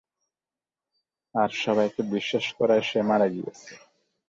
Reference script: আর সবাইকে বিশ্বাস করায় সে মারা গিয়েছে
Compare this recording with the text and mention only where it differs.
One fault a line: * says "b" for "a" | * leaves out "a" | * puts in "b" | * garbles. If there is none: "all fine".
all fine